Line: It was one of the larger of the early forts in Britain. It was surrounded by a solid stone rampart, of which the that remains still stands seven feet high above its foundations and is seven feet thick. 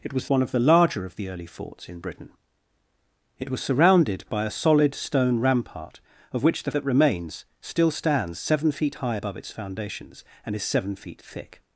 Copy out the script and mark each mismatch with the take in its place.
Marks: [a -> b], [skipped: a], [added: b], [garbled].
It was one of the larger of the early forts in Britain. It was surrounded by a solid stone rampart, of which the that remains still stands seven feet high above its foundations and is seven feet thick.